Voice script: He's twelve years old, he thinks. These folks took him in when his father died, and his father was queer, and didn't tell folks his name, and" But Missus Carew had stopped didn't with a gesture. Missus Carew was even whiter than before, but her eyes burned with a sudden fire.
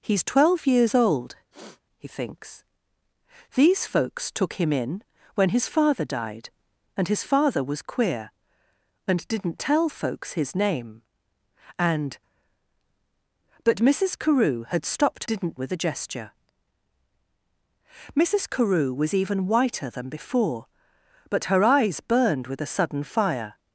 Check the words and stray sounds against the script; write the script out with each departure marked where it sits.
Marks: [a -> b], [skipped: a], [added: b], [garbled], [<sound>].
He's twelve years old, [sniff] he thinks. These folks took him in when his father died, and his father was queer, and didn't tell folks his name, and" But Missus Carew had stopped didn't with a gesture. Missus Carew was even whiter than before, but her eyes burned with a sudden fire.